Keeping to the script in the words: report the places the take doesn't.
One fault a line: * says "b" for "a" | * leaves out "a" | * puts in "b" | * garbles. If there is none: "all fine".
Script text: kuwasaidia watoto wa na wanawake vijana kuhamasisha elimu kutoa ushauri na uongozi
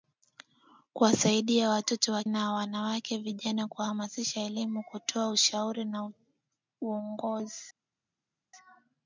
all fine